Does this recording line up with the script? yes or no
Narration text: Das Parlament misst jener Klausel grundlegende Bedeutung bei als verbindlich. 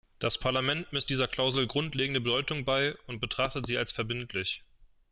no